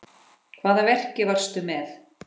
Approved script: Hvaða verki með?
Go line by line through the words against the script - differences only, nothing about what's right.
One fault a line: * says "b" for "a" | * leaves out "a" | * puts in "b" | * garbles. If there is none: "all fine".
* puts in "varstu"